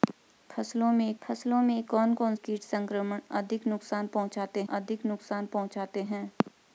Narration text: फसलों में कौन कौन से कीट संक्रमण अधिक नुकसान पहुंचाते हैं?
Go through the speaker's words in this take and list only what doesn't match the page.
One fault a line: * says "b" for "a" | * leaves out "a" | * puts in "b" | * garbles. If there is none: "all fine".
* puts in "फसलों में"
* leaves out "से"
* puts in "अधिक नुकसान पहुंचाते"